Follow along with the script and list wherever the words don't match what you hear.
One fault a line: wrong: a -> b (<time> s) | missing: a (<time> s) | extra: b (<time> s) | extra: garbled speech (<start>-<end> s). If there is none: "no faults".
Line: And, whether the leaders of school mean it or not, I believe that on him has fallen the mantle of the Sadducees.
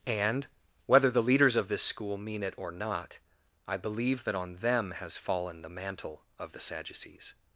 extra: this (1.7 s)
wrong: him -> them (4.6 s)